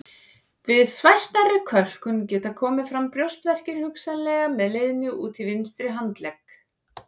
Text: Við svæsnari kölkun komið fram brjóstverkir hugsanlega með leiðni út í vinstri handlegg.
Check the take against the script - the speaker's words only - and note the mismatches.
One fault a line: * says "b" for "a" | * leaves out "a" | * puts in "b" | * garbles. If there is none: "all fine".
* puts in "geta"